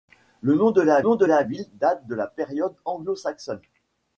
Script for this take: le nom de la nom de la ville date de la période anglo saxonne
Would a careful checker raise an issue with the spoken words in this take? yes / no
no